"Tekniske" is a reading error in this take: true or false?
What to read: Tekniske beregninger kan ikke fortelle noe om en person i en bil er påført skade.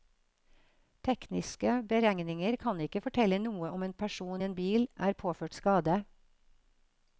false